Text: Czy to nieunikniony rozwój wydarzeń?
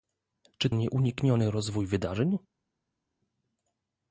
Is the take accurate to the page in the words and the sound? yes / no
no